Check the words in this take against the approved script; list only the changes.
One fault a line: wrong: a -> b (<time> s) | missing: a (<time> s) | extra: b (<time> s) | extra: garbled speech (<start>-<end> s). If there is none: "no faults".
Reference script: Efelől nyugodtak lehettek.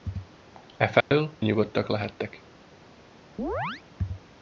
no faults